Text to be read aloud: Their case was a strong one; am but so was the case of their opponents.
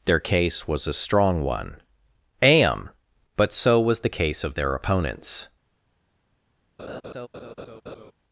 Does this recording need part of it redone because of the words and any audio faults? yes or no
yes